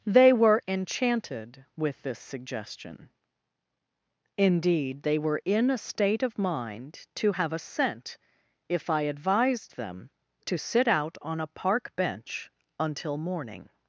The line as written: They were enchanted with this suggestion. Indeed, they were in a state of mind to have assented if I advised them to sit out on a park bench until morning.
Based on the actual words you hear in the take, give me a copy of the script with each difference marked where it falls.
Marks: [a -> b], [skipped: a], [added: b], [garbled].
They were enchanted with this suggestion. Indeed, they were in a state of mind to have [assented -> assent] if I advised them to sit out on a park bench until morning.